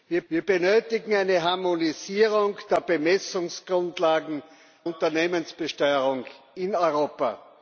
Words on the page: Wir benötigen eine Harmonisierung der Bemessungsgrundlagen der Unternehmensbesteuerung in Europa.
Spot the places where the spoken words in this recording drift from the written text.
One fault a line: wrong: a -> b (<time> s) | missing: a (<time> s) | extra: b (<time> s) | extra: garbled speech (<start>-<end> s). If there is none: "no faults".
extra: wir (0.3 s)
missing: der (4.4 s)